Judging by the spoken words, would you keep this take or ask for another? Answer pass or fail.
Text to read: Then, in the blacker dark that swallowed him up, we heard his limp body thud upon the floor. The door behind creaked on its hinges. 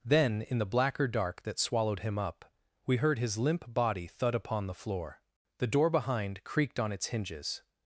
pass